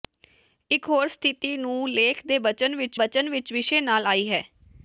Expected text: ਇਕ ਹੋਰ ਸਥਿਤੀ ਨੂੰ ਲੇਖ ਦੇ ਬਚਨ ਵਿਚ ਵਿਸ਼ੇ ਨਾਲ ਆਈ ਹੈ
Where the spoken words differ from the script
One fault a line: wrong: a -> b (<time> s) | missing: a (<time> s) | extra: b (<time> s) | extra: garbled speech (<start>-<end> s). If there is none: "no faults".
extra: ਬਚਨ ਵਿਚ (2.9 s)